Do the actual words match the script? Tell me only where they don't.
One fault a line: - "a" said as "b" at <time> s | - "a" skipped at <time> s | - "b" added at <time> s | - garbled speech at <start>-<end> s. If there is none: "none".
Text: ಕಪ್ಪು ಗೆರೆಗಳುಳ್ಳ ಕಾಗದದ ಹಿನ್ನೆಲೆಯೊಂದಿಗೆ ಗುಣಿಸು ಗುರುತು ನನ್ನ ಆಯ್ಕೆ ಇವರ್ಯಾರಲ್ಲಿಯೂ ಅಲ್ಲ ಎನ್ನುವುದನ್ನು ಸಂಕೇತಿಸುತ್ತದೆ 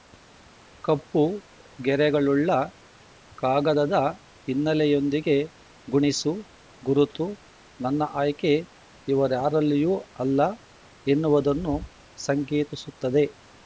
none